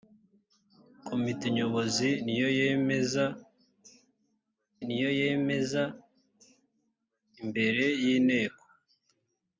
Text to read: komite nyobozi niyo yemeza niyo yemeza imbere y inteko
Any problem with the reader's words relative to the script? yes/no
no